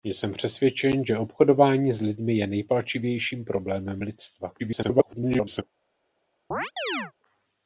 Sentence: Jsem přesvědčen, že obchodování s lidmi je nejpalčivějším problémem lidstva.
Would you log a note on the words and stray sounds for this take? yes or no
yes